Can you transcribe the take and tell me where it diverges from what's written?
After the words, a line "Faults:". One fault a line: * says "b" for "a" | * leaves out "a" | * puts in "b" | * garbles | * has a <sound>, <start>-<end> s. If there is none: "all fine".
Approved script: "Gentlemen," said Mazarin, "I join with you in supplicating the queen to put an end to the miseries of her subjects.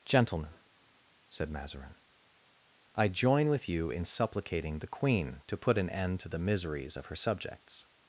"Gentlemen," said Mazarin, "I join with you in supplicating the queen to put an end to the miseries of her subjects.
Faults:
all fine